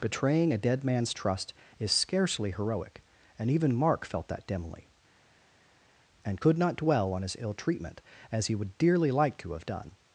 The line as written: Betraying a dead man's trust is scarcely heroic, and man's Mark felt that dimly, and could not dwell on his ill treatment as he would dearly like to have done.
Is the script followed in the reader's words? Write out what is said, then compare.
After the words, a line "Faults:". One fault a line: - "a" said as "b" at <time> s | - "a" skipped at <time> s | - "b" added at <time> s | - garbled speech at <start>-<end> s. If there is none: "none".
Betraying a dead man's trust is scarcely heroic, and even Mark felt that dimly, and could not dwell on his ill treatment as he would dearly like to have done.
Faults:
- "man's" said as "even" at 3.5 s